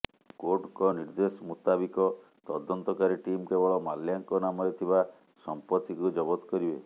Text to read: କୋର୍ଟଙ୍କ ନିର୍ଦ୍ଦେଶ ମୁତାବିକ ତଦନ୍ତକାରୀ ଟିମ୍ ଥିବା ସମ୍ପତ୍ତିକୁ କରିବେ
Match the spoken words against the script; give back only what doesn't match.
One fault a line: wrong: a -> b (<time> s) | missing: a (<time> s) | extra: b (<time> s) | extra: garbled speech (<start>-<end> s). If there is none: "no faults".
extra: କେବଳ ମାଲ୍ୟାଙ୍କ ନାମରେ (3.5 s)
extra: ଜବତ (6.1 s)